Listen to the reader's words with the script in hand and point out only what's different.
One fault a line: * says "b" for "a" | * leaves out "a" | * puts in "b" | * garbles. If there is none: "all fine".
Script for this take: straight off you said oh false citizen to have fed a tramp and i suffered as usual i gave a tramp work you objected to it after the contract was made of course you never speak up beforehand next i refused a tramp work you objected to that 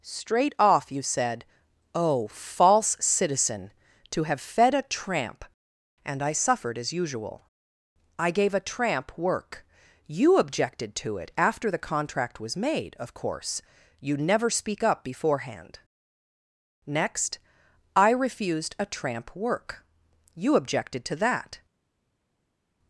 all fine